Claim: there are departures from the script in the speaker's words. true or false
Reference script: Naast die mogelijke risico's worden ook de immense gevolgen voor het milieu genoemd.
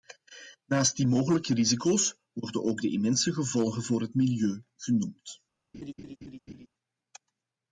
false